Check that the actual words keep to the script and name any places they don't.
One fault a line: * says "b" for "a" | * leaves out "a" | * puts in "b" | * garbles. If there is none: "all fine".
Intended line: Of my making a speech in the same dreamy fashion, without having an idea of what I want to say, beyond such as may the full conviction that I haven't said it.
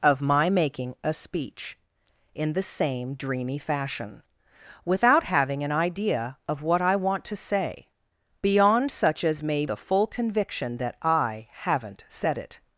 all fine